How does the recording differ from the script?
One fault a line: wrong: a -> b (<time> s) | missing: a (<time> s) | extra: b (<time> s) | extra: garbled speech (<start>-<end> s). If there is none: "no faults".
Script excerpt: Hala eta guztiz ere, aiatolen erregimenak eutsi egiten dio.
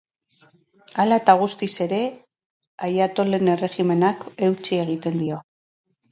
no faults